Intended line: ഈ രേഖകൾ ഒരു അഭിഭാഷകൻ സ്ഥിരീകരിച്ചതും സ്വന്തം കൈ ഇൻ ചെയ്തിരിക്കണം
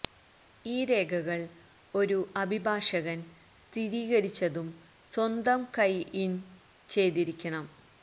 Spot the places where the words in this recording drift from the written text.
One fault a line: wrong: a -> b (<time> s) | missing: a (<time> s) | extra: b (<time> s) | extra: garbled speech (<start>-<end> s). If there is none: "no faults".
no faults